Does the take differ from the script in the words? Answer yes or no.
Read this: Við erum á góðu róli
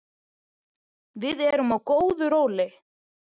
no